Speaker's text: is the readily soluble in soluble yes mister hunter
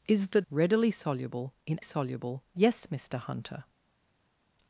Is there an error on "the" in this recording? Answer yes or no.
no